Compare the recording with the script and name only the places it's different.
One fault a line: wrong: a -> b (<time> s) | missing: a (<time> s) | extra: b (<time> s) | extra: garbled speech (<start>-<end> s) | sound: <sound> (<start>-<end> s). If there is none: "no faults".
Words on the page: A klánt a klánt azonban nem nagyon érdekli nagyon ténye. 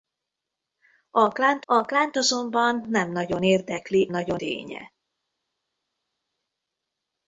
no faults